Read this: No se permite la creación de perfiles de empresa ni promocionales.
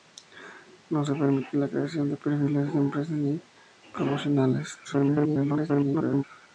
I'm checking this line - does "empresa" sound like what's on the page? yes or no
yes